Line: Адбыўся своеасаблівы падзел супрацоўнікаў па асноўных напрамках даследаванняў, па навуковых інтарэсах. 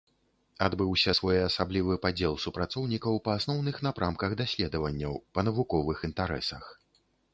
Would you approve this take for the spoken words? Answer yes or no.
yes